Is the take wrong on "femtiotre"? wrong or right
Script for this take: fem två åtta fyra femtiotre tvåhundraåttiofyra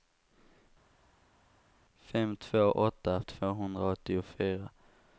wrong